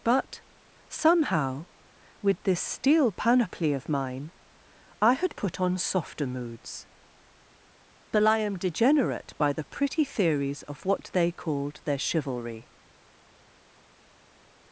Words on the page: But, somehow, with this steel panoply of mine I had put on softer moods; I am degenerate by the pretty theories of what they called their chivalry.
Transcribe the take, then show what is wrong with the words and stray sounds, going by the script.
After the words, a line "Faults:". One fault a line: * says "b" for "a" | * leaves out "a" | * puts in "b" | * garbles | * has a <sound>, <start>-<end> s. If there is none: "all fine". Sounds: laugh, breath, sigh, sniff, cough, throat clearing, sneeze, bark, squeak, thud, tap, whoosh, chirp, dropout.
But, somehow, with this steel panoply of mine I had put on softer moods; but I am degenerate by the pretty theories of what they called their chivalry.
Faults:
* puts in "but"